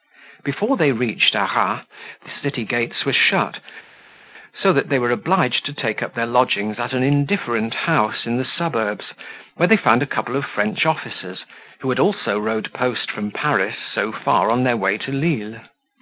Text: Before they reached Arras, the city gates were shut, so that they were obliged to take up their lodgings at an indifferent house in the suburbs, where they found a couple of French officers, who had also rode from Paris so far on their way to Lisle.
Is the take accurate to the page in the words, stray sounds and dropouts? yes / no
no